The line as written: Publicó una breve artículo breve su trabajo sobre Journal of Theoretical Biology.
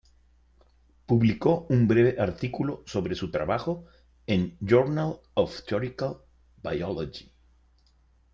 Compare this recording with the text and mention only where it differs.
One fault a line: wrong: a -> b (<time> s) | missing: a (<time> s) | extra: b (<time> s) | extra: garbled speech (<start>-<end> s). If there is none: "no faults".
wrong: una -> un (1.7 s)
wrong: breve -> sobre (2.9 s)
wrong: sobre -> en (4.3 s)